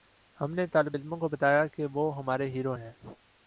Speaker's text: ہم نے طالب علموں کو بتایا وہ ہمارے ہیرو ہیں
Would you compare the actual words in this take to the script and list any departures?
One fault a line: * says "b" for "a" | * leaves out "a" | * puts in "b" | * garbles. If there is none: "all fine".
* puts in "کہ"